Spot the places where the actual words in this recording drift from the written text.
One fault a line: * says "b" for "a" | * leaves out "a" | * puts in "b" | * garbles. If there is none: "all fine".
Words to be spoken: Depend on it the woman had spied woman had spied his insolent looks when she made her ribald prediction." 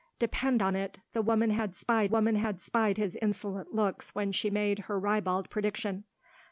all fine